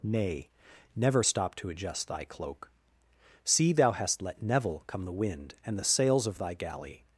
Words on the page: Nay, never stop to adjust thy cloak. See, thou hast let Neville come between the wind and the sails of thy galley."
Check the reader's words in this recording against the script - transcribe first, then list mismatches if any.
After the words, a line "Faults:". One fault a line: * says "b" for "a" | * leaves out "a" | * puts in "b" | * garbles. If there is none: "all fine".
Nay, never stop to adjust thy cloak. See, thou hast let Neville come the wind and the sails of thy galley."
Faults:
* leaves out "between"